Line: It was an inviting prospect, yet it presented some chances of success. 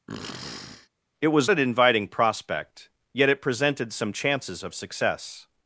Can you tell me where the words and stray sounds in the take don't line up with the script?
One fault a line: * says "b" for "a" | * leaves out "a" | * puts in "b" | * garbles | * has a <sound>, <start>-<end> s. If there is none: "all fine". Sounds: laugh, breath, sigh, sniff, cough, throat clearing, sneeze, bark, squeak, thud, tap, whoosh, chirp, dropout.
* has a sniff, 0.1-0.9 s